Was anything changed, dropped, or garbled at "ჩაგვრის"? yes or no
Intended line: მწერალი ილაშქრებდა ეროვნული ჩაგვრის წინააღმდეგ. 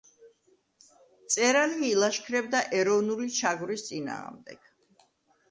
no